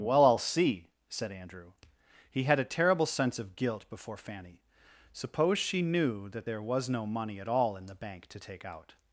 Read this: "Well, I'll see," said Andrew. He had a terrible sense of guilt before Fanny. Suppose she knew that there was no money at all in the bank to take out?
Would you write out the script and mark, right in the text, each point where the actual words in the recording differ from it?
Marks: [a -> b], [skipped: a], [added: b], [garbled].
"Well, I'll see," said Andrew. He had a terrible sense of guilt before Fanny. Suppose she knew that there was no money at all in the bank to take out?